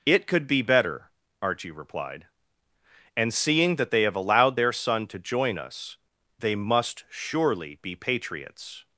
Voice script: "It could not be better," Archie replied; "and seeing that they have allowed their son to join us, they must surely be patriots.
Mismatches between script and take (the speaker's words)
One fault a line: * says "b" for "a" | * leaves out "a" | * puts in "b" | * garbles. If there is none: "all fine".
* leaves out "not"